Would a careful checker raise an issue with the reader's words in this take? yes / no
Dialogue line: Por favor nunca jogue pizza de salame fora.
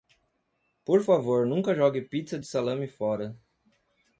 no